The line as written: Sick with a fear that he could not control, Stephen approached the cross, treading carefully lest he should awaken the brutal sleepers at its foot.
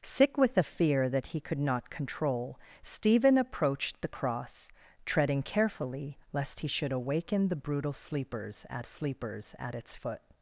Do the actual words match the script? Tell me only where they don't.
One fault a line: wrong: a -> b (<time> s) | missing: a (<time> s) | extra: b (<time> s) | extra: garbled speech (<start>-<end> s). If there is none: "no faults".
extra: sleepers at (8.8 s)